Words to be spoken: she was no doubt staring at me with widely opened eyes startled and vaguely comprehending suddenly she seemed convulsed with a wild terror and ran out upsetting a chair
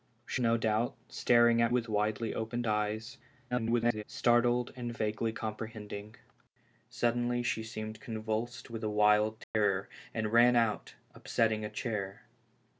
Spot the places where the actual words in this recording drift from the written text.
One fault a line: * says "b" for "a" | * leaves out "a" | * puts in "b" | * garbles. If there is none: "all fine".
* leaves out "was"
* leaves out "me"
* garbles